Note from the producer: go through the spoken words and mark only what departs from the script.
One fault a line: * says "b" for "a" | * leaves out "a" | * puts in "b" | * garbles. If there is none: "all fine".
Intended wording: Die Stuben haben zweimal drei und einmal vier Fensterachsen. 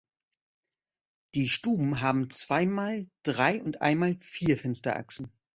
all fine